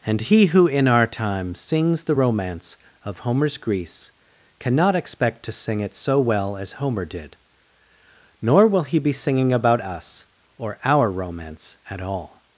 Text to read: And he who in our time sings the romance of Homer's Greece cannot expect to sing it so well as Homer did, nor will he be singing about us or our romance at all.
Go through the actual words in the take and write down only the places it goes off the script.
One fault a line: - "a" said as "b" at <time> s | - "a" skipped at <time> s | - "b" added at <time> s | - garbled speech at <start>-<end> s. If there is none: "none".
none